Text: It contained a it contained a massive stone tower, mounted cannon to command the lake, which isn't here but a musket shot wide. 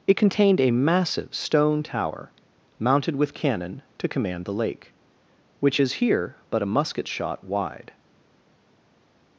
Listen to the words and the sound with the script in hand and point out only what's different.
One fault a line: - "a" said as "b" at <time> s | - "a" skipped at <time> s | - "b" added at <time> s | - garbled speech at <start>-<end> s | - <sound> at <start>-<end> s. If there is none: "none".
- "it contained a" skipped at 0.7 s
- "with" added at 3.1 s
- "isn't" said as "is" at 5.8 s